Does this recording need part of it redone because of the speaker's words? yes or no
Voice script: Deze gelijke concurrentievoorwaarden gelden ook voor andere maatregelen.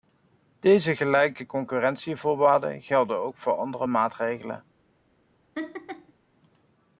no